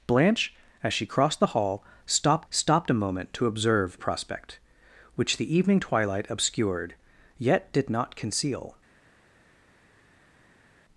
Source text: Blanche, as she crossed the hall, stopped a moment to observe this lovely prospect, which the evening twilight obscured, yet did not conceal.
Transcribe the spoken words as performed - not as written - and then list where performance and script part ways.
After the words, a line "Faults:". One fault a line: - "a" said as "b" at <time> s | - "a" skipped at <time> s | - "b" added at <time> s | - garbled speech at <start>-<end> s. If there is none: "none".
Blanche, as she crossed the hall, stopped stopped a moment to observe prospect, which the evening twilight obscured, yet did not conceal.
Faults:
- "stopped" added at 2.5 s
- "this lovely" skipped at 4.0 s